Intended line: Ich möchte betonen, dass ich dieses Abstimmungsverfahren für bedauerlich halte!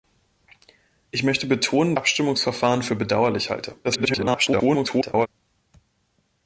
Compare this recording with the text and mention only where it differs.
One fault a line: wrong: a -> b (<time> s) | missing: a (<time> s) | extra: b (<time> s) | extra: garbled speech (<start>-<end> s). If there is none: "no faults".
missing: dass ich dieses (1.9 s)
extra: garbled speech (3.8-5.3 s)